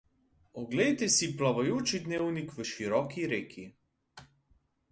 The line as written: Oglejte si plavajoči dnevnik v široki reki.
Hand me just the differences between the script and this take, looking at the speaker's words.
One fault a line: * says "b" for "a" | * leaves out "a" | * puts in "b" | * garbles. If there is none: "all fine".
all fine